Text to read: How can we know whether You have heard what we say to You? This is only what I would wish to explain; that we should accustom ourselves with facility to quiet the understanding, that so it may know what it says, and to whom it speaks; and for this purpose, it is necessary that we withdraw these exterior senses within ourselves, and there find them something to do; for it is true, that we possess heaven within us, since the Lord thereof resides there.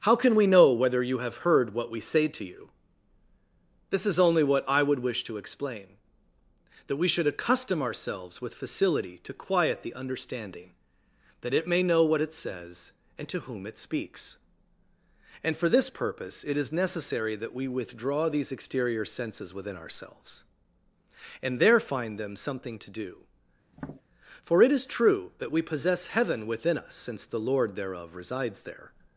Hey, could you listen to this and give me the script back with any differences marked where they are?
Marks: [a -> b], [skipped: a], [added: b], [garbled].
How can we know whether You have heard what we say to You? This is only what I would wish to explain; that we should accustom ourselves with facility to quiet the understanding, that [skipped: so] it may know what it says, and to whom it speaks; and for this purpose, it is necessary that we withdraw these exterior senses within ourselves, and there find them something to do; for it is true, that we possess heaven within us, since the Lord thereof resides there.